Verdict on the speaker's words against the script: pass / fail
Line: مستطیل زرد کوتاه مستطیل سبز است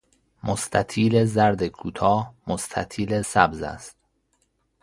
pass